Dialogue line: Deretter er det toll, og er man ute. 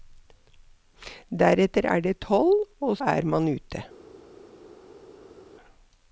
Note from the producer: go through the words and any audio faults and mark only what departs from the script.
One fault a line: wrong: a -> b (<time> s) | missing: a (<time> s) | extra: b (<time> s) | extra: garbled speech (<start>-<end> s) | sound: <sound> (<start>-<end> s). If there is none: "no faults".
no faults